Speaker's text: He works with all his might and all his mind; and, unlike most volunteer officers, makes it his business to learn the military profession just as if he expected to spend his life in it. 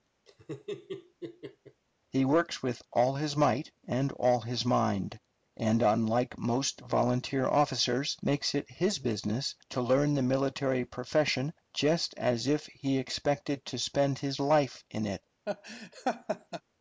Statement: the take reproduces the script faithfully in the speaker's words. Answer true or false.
true